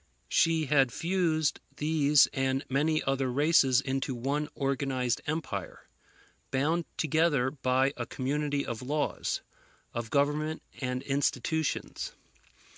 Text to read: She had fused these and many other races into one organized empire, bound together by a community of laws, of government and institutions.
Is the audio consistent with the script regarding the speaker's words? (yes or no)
yes